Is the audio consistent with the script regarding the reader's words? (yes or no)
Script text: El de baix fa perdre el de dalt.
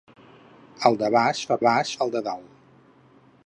no